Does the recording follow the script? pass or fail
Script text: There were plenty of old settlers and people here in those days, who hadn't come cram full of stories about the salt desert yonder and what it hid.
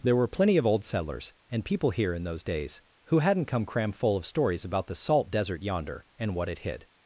pass